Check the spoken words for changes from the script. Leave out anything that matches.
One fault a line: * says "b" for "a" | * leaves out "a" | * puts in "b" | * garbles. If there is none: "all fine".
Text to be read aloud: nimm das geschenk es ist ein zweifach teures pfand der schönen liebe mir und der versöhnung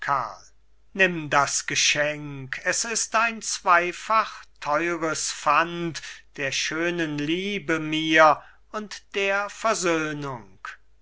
all fine